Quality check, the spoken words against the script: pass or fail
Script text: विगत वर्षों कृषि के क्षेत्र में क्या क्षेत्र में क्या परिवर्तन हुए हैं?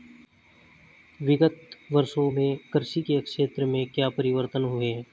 fail